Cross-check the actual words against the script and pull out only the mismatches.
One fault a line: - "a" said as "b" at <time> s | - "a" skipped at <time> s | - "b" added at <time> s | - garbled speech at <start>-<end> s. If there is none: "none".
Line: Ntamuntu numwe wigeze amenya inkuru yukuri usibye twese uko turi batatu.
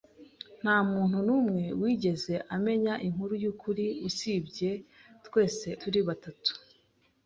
- "uko" skipped at 5.7 s